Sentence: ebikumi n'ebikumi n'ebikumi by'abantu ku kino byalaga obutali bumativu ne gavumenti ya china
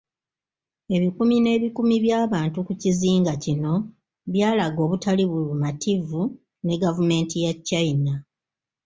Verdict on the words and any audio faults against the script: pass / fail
fail